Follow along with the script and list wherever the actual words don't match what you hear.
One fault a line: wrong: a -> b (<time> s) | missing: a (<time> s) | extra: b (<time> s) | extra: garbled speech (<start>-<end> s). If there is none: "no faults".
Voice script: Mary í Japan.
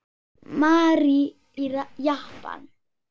no faults